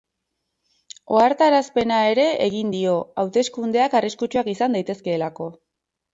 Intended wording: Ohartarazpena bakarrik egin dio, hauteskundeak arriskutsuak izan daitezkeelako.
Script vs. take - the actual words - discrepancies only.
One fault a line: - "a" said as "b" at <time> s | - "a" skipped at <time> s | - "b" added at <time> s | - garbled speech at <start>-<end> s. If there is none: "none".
- "bakarrik" said as "ere" at 2.1 s